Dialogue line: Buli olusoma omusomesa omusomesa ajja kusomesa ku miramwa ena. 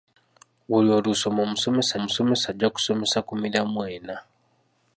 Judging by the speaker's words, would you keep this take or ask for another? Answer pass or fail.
pass